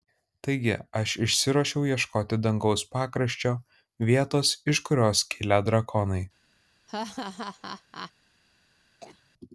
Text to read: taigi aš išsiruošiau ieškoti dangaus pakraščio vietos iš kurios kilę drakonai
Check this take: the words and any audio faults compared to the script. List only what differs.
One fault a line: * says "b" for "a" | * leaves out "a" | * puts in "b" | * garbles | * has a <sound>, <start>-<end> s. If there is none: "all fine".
* has a laugh, 6.9-8.1 s
* has a cough, 9.0-9.3 s